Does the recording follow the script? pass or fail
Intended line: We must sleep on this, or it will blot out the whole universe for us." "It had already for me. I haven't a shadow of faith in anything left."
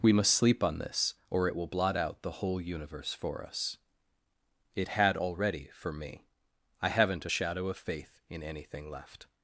pass